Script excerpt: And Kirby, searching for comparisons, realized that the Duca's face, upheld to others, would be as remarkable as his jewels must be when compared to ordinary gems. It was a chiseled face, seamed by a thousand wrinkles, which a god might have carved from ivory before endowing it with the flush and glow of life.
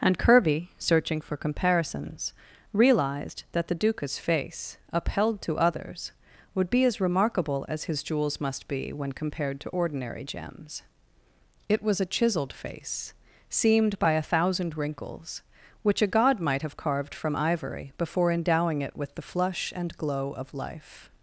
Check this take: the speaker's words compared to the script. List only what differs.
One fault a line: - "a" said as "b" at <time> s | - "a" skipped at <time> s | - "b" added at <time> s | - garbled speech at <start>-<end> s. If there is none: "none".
none